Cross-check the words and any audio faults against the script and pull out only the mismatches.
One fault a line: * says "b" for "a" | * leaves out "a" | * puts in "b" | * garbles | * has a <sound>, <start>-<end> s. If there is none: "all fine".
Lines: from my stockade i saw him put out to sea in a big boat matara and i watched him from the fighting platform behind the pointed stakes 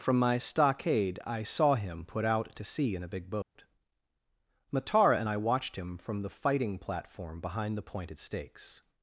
* has a dropout, 3.4-3.6 s